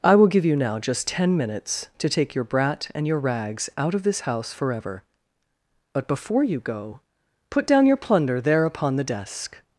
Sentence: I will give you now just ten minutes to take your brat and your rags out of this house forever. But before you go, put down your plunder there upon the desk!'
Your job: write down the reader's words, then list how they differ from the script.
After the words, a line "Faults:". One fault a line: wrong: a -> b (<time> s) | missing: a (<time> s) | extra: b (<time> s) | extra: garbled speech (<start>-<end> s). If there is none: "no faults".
I will give you now just ten minutes to take your brat and your rags out of this house forever. But before you go, put down your plunder there upon the desk!'
Faults:
no faults